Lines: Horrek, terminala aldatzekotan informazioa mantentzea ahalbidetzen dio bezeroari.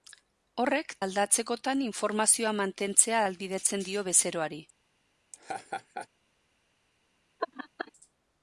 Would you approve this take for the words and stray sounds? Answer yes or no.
no